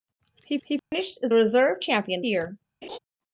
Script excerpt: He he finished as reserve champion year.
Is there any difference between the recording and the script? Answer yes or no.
no